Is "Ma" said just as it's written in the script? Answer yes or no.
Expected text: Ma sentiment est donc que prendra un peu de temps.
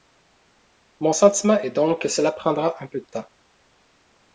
no